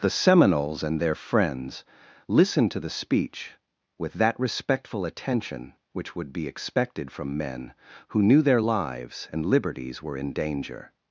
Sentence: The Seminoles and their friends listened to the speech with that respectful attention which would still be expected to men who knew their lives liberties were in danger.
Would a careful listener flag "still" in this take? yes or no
yes